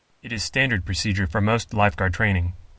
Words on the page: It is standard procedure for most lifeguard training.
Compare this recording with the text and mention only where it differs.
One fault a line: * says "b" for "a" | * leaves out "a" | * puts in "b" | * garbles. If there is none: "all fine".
all fine